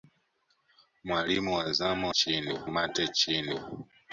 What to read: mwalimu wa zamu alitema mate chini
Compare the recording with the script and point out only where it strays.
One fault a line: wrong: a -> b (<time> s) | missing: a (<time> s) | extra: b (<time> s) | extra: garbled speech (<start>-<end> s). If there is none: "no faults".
wrong: alitema -> chini (2.1 s)